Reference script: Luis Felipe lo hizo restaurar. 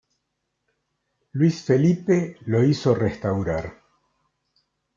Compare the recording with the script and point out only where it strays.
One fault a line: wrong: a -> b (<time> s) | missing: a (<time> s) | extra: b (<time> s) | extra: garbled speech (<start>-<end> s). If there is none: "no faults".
no faults